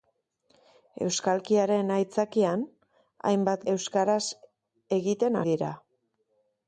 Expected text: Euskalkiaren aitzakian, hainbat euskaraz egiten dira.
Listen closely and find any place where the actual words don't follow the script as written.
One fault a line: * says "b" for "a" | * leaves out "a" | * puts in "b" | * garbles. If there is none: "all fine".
all fine